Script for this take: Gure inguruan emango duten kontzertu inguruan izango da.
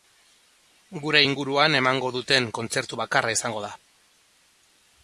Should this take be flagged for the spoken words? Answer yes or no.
yes